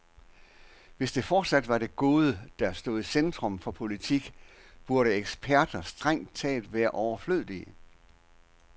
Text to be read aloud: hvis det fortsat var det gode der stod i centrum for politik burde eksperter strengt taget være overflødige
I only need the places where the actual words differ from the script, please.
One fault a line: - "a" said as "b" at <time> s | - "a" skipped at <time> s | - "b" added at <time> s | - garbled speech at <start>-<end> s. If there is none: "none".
none